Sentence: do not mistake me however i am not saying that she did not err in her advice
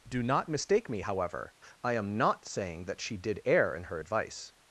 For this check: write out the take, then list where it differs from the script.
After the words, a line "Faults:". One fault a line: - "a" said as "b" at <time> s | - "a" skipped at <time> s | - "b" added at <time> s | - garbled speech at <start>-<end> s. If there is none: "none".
do not mistake me however i am not saying that she did err in her advice
Faults:
- "not" skipped at 3.4 s